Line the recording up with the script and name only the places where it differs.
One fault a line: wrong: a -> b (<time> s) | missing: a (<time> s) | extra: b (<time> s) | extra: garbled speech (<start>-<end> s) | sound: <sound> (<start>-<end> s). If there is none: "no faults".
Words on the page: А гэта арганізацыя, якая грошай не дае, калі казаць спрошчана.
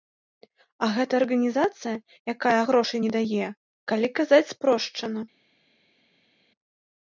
no faults